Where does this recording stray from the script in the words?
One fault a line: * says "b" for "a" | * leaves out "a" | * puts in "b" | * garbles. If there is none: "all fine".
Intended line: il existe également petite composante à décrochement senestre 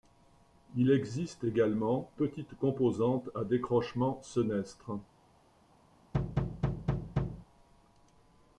all fine